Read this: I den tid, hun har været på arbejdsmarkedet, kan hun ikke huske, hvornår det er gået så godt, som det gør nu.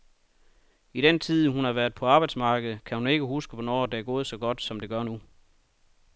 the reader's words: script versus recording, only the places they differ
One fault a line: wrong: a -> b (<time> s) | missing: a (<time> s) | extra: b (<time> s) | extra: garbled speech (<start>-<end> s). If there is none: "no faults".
no faults